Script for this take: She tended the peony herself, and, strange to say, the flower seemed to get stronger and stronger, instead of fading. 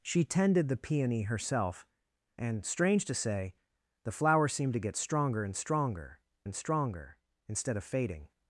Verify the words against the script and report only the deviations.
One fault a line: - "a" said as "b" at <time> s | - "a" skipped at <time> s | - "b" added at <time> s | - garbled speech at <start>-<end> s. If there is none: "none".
- "and stronger" added at 6.4 s